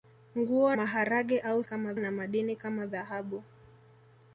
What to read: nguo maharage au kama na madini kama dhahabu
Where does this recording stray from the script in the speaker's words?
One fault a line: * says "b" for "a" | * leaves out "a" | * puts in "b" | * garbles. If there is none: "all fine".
all fine